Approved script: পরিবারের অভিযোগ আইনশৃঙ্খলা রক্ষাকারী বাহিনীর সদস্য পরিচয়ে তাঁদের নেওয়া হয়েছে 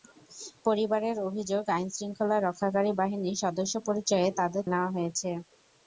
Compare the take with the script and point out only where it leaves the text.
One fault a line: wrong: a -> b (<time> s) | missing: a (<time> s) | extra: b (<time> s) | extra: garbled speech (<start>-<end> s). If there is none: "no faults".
no faults